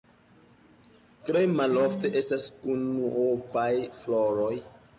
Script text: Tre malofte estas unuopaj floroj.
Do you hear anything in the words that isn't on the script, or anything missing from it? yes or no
no